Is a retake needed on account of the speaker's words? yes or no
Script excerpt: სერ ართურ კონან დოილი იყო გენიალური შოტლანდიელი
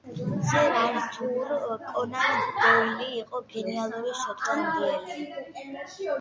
no